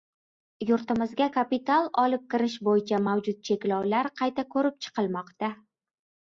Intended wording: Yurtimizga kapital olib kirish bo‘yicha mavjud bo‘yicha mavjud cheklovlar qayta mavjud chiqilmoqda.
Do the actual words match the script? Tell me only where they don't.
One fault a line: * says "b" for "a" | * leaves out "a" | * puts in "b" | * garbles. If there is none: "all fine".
* leaves out "bo‘yicha mavjud"
* says "ko‘rib" for "mavjud"